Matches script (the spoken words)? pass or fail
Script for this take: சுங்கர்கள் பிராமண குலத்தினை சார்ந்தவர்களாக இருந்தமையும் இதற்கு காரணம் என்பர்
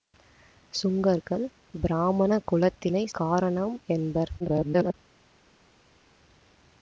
fail